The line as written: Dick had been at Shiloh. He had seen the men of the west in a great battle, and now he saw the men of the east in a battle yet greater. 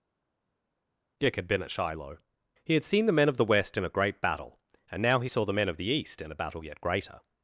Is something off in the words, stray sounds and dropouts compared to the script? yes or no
no